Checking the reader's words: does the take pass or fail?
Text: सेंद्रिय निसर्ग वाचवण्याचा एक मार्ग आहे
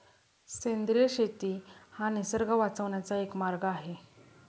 fail